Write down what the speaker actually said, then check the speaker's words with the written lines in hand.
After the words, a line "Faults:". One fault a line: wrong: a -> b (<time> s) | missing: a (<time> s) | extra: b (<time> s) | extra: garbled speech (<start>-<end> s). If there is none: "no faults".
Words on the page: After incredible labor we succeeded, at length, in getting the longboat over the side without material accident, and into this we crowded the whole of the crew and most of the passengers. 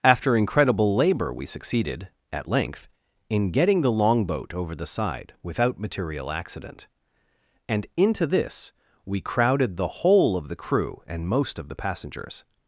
After incredible labor we succeeded, at length, in getting the longboat over the side without material accident, and into this we crowded the whole of the crew and most of the passengers.
Faults:
no faults